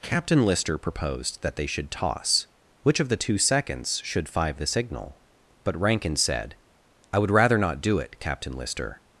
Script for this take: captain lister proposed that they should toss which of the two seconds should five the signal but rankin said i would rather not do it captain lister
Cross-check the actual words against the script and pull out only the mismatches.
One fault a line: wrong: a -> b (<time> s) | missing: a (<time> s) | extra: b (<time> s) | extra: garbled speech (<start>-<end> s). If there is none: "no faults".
no faults